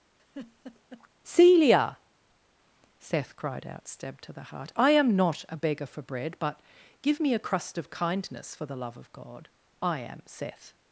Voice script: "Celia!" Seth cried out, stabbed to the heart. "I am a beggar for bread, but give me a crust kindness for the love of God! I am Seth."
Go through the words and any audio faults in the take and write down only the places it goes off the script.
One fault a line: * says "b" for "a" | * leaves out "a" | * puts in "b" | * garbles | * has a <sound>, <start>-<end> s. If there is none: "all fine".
* has a laugh, 0.2-1.1 s
* puts in "not"
* puts in "of"